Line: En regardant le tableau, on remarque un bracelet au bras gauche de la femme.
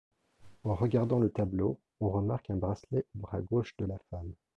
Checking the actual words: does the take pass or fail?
pass